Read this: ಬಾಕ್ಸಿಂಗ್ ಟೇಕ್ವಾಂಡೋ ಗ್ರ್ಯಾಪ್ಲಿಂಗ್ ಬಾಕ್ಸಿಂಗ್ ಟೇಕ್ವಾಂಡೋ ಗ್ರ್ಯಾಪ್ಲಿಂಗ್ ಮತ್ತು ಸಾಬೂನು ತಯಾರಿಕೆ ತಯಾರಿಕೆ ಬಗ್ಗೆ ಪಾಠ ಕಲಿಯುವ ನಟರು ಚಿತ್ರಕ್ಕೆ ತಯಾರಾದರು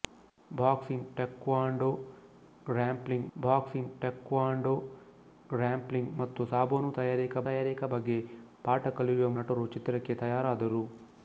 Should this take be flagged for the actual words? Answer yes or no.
no